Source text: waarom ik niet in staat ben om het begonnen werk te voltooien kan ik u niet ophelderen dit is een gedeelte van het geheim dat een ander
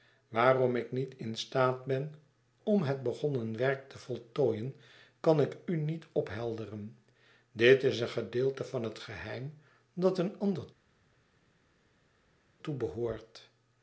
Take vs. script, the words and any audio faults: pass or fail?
pass